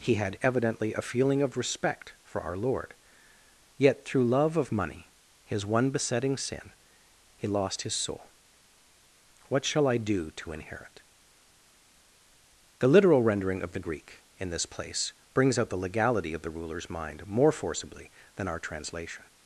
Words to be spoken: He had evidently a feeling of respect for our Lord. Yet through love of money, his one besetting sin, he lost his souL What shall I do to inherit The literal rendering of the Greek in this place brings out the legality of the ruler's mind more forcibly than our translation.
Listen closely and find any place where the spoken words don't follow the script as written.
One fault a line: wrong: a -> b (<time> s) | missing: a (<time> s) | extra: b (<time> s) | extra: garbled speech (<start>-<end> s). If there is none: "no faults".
no faults